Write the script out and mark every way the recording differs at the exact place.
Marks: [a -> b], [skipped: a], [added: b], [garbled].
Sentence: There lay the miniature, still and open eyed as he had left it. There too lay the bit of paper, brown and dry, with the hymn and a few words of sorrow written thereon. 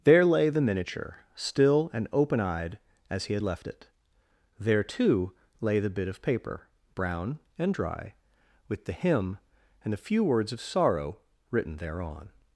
There lay the miniature, still and open eyed as he had left it. There too lay the bit of paper, brown and dry, with the hymn and a few words of sorrow written thereon.